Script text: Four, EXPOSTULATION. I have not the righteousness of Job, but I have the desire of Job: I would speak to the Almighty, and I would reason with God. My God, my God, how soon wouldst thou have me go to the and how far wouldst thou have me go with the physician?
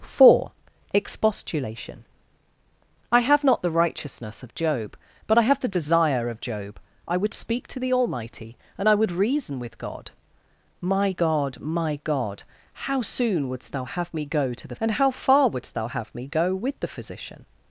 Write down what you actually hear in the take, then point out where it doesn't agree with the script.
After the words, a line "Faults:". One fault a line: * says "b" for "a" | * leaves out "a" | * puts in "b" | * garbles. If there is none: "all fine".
Four, EXPOSTULATION. I have not the righteousness of Job, but I have the desire of Job: I would speak to the Almighty, and I would reason with God. My God, my God, how soon wouldst thou have me go to the and how far wouldst thou have me go with the physician?
Faults:
all fine